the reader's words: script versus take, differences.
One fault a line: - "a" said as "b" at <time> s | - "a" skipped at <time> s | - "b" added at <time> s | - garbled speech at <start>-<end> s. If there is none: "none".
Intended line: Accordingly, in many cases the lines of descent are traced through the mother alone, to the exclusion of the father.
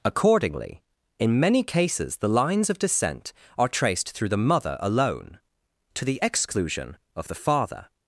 none